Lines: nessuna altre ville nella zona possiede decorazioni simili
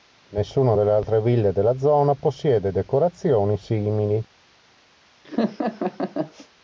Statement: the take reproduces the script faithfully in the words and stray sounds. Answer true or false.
false